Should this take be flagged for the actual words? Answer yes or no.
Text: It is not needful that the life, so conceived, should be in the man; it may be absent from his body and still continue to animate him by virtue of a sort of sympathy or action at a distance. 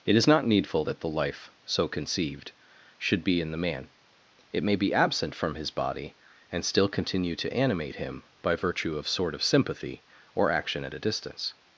yes